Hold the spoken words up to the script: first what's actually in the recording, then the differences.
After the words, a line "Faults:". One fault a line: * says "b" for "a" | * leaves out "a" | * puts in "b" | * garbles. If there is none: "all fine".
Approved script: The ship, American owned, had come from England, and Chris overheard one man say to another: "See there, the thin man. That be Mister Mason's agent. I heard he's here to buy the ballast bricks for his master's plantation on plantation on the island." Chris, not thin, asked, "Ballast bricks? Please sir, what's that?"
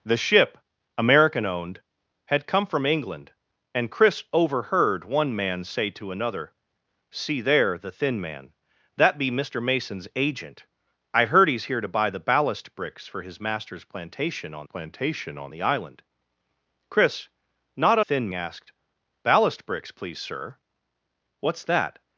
The ship, American owned, had come from England, and Chris overheard one man say to another: "See there, the thin man. That be Mister Mason's agent. I heard he's here to buy the ballast bricks for his master's plantation on plantation on the island." Chris, not thin, asked, "Ballast bricks? Please sir, what's that?"
Faults:
all fine